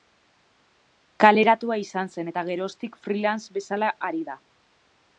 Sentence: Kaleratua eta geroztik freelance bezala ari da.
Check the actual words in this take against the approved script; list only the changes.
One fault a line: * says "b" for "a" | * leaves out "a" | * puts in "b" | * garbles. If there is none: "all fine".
* puts in "izan zen"